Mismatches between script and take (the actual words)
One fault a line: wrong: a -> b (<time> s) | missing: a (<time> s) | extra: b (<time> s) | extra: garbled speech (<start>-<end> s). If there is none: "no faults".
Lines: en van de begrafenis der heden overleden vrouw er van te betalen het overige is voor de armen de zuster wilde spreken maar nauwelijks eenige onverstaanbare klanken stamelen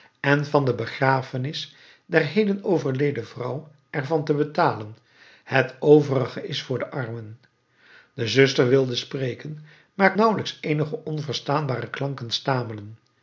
no faults